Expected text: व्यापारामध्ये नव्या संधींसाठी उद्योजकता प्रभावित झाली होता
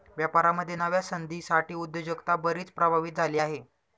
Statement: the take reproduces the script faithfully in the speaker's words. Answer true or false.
false